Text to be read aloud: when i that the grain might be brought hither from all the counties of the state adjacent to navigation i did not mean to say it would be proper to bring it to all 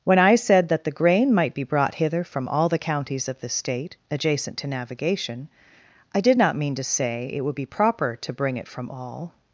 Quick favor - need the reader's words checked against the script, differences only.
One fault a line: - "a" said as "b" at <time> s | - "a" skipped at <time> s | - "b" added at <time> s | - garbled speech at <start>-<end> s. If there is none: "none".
- "said" added at 0.3 s
- "to" said as "from" at 8.7 s